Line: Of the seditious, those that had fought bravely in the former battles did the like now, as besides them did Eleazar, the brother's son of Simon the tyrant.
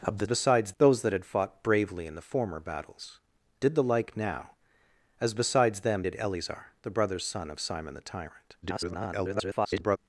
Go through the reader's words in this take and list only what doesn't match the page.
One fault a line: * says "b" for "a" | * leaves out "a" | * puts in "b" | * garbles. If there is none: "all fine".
* says "besides" for "seditious"
* garbles